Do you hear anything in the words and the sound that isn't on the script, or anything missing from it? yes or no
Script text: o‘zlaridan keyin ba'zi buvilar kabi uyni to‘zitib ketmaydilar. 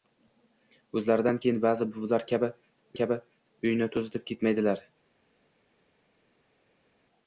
yes